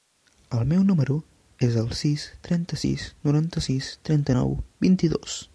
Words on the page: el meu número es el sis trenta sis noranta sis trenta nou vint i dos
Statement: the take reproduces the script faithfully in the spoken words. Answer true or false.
true